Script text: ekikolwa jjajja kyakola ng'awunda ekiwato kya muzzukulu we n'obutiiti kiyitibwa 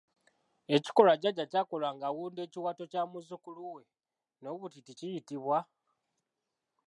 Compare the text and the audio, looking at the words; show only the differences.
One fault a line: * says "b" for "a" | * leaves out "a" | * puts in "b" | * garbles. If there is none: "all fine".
all fine